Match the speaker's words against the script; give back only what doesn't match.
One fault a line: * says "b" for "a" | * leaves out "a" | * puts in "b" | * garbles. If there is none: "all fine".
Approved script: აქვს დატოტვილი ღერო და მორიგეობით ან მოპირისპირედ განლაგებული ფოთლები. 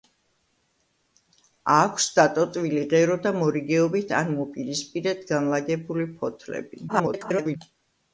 * garbles